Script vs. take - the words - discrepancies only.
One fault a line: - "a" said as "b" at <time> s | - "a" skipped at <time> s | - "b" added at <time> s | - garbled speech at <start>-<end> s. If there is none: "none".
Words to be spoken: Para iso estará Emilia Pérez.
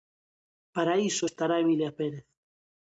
none